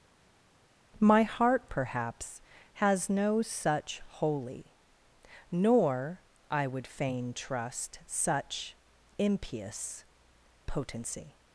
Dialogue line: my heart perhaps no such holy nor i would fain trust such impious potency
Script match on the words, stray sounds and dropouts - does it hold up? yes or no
no